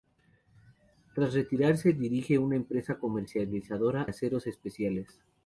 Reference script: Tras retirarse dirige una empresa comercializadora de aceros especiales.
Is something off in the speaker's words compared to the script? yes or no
yes